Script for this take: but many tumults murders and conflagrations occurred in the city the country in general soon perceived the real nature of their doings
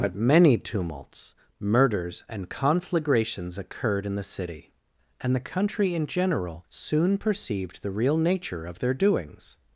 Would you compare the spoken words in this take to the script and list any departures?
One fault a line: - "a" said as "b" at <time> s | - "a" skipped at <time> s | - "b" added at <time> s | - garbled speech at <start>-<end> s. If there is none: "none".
- "and" added at 5.2 s